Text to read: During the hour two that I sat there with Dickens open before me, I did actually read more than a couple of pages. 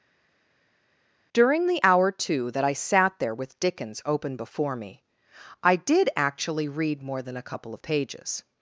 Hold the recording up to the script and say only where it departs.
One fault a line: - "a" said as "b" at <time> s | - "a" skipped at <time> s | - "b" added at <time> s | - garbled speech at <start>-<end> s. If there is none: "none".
none